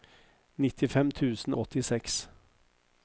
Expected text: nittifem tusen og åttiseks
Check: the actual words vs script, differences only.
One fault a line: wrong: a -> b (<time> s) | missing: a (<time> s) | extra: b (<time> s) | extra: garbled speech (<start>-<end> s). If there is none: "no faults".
missing: og (1.5 s)